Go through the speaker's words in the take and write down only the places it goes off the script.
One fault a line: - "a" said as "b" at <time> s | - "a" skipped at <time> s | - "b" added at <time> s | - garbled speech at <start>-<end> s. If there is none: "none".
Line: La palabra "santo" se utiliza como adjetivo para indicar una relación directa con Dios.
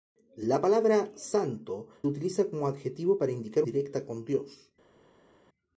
- "se" skipped at 1.9 s
- "una relación" skipped at 3.6 s